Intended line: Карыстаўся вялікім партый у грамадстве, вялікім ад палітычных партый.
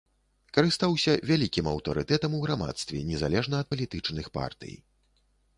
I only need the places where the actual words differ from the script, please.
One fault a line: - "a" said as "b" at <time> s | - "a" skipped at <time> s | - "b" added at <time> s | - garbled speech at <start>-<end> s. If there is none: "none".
- "партый" said as "аўтарытэтам" at 1.7 s
- "вялікім" said as "незалежна" at 3.1 s